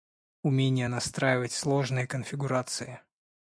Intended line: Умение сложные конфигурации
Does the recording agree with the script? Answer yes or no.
no